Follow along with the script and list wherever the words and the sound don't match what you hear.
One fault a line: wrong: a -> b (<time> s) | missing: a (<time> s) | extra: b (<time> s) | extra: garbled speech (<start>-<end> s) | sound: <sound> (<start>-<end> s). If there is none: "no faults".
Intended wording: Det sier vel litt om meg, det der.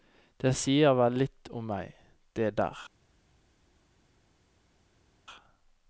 no faults